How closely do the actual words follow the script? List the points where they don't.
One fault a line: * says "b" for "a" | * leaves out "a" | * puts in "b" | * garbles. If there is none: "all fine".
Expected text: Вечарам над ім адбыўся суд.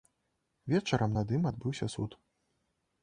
all fine